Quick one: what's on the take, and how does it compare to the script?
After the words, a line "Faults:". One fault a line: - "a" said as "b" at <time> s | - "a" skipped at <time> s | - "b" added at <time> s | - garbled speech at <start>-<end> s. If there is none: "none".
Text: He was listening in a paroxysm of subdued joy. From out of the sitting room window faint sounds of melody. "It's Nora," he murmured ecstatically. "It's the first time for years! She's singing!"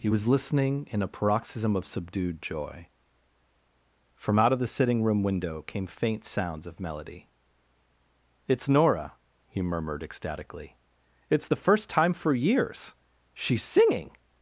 He was listening in a paroxysm of subdued joy. From out of the sitting room window came faint sounds of melody. "It's Nora," he murmured ecstatically. "It's the first time for years! She's singing!"
Faults:
- "came" added at 5.6 s